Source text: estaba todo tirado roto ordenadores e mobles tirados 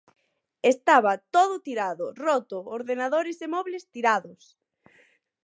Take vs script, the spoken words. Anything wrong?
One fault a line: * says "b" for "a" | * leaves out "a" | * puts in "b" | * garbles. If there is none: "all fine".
all fine